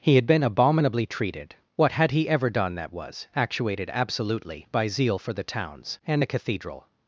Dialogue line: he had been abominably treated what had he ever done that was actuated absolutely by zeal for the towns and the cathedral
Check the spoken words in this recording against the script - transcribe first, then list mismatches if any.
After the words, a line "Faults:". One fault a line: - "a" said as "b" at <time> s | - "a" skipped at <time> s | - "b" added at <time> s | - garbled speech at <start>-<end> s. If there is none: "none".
he had been abominably treated what had he ever done that was actuated absolutely by zeal for the towns and the cathedral
Faults:
none